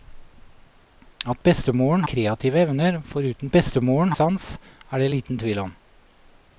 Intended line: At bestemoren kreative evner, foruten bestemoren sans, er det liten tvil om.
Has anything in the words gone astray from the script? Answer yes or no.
no